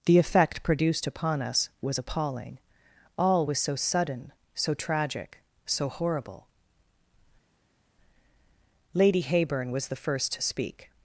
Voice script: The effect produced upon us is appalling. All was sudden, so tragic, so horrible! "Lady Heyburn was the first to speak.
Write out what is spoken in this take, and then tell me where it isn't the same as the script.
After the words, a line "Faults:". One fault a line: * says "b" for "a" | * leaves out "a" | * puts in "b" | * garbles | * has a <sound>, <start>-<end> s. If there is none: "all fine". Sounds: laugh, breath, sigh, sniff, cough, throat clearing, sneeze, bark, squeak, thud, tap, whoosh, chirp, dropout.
The effect produced upon us was appalling. All was so sudden, so tragic, so horrible! "Lady Heyburn was the first to speak.
Faults:
* says "was" for "is"
* puts in "so"